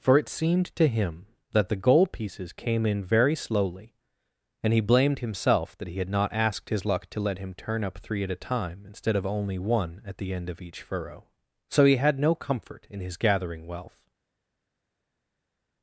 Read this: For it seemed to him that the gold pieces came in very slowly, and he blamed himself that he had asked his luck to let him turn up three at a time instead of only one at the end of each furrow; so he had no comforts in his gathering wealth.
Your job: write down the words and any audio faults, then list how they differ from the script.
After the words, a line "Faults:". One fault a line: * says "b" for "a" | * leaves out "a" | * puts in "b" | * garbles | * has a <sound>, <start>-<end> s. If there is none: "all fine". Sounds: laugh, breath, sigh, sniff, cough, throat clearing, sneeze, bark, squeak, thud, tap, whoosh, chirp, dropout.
For it seemed to him that the gold pieces came in very slowly, and he blamed himself that he had not asked his luck to let him turn up three at a time instead of only one at the end of each furrow; so he had no comfort in his gathering wealth.
Faults:
* puts in "not"
* says "comfort" for "comforts"